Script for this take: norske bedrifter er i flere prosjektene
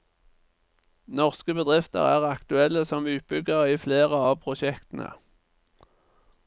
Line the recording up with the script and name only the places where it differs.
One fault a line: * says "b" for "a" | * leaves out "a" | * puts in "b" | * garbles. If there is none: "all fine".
* puts in "aktuelle som utbyggere"
* puts in "av"